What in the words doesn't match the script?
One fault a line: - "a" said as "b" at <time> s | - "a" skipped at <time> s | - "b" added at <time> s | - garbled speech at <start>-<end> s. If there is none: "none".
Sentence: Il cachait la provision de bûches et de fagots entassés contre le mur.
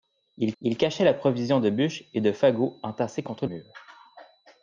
- "il" added at 0.6 s
- "le" skipped at 3.5 s